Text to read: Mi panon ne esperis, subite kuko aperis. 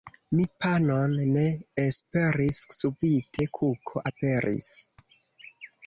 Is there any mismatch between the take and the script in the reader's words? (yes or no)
no